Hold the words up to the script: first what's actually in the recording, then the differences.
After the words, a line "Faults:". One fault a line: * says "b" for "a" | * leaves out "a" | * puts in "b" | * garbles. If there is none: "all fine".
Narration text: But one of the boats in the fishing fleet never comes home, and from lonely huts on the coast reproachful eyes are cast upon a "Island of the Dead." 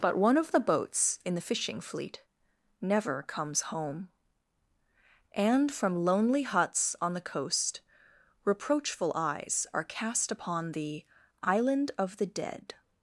But one of the boats in the fishing fleet never comes home, and from lonely huts on the coast reproachful eyes are cast upon the "Island of the Dead."
Faults:
* says "the" for "a"